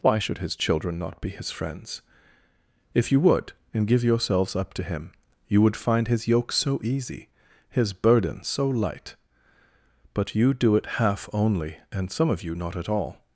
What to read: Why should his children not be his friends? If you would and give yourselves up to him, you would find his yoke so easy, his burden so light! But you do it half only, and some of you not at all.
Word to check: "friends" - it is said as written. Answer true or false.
true